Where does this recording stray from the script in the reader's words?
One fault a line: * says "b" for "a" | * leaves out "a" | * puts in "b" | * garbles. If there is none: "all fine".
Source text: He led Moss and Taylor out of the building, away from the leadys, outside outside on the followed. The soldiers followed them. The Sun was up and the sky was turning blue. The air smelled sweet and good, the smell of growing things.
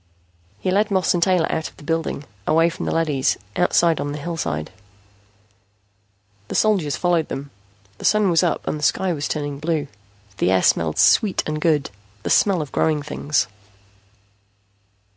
* leaves out "outside"
* says "hillside" for "followed"